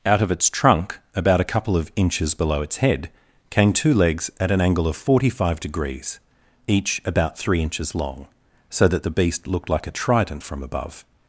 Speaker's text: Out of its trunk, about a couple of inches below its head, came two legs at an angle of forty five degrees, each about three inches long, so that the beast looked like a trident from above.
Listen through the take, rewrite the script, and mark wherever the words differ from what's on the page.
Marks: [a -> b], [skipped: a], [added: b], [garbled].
Out of its trunk, about a couple of inches below its head, came two legs at an angle of forty five degrees, each about three inches long, so that the beast looked like a trident from above.